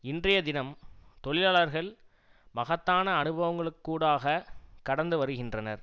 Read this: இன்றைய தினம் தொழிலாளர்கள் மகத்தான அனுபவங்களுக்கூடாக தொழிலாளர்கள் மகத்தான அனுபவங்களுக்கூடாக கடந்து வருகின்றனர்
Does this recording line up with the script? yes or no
no